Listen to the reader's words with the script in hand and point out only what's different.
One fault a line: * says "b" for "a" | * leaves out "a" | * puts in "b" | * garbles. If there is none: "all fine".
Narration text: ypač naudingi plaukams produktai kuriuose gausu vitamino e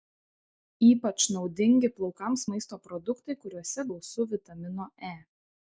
* puts in "maisto"